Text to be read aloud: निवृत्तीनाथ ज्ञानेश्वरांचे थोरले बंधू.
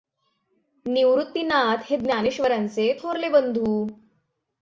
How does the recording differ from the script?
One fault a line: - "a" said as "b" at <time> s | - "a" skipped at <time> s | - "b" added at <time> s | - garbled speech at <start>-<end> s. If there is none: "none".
- "हे" added at 1.8 s